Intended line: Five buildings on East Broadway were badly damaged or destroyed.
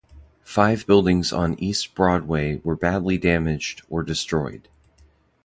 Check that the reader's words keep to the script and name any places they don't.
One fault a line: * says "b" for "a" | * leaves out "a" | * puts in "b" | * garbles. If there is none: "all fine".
all fine